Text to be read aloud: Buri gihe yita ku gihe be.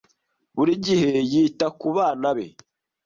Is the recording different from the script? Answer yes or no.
yes